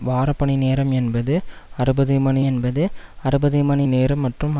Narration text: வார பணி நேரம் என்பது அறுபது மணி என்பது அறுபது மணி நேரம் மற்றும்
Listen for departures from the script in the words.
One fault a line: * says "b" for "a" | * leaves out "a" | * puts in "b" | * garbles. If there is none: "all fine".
all fine